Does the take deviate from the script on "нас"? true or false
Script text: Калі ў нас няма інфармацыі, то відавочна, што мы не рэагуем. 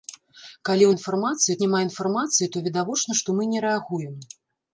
true